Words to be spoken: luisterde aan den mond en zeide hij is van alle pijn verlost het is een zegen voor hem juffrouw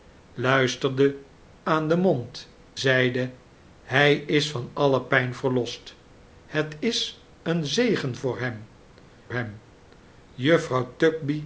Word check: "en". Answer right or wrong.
wrong